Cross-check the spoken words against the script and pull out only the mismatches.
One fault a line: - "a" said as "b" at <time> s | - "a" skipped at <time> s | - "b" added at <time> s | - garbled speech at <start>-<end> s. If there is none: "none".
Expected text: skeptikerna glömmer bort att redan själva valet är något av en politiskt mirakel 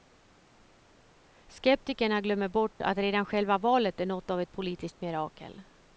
- "en" said as "ett" at 4.4 s